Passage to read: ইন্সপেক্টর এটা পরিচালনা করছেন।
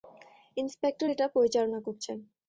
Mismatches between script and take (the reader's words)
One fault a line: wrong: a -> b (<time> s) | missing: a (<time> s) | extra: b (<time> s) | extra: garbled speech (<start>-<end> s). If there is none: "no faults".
no faults